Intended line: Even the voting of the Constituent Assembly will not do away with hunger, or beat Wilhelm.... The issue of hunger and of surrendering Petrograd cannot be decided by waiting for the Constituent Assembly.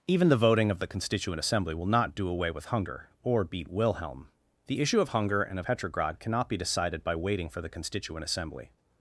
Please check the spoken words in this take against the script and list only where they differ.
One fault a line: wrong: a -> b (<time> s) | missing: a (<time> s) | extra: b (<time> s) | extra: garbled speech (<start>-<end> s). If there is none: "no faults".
missing: surrendering (5.7 s)